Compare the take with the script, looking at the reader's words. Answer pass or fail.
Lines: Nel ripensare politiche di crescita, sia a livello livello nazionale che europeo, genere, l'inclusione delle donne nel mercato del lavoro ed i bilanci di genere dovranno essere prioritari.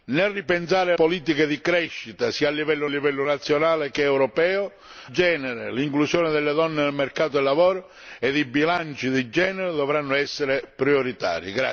pass